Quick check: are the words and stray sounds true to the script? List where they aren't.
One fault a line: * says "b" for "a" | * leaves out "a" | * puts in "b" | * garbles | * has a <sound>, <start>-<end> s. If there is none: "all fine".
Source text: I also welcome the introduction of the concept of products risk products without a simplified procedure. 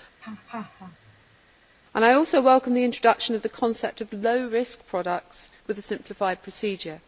* has a laugh, 0.2-1.4 s
* says "low" for "products"
* says "with" for "without"